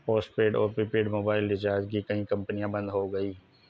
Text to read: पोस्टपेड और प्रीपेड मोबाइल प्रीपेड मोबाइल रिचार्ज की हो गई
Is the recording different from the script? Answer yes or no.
yes